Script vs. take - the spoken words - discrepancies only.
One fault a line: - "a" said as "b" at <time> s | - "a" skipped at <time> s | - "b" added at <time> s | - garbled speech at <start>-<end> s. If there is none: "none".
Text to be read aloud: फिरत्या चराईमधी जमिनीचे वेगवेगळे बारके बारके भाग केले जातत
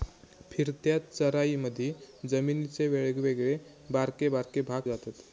- "केले" skipped at 4.8 s